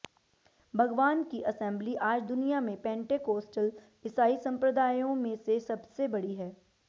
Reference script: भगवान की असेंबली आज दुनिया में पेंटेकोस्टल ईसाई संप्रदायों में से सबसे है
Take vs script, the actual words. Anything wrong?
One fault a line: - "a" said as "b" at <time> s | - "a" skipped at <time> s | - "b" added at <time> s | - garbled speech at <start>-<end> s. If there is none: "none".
- "बड़ी" added at 6.1 s